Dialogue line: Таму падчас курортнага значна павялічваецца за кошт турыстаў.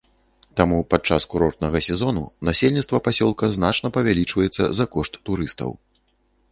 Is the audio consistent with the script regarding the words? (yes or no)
no